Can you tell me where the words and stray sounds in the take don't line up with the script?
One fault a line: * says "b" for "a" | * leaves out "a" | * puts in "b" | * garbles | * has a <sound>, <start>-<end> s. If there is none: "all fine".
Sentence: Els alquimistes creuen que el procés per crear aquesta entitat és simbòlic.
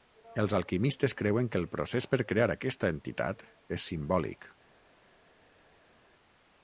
all fine